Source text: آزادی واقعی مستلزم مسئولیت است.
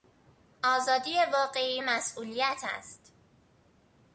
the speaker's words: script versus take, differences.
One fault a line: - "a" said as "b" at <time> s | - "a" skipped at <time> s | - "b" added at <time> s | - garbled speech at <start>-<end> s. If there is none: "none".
- "مستلزم" skipped at 1.8 s